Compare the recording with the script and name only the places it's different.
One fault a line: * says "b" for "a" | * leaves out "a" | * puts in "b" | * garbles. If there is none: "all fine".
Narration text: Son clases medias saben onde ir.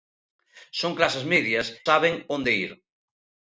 all fine